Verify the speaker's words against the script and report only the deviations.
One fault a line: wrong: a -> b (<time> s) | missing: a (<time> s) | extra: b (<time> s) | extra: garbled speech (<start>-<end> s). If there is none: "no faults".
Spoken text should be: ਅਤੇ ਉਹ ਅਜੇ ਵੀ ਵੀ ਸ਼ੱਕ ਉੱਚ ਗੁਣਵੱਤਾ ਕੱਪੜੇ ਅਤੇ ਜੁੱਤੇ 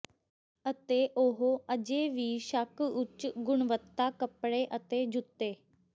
missing: ਵੀ (2.4 s)